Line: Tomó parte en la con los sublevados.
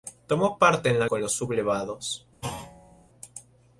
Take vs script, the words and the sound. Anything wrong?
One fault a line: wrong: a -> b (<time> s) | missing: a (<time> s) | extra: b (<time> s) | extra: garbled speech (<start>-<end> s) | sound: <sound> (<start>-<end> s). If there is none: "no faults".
sound: thud (2.4-3.1 s)